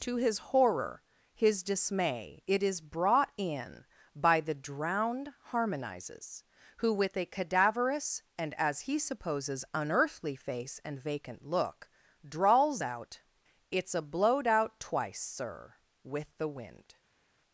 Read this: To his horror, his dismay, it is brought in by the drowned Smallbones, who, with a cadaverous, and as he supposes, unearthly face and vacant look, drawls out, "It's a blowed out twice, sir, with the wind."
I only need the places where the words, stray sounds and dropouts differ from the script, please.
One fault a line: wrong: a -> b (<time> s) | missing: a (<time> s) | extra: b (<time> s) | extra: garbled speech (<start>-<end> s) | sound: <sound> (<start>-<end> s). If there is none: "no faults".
wrong: Smallbones -> Harmonizes (5.5 s)